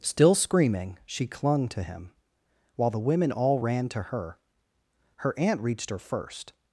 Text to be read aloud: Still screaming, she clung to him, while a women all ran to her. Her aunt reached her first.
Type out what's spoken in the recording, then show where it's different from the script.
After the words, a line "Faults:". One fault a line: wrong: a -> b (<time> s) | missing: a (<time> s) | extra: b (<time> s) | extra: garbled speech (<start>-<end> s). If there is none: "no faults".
Still screaming, she clung to him, while the women all ran to her. Her aunt reached her first.
Faults:
wrong: a -> the (2.9 s)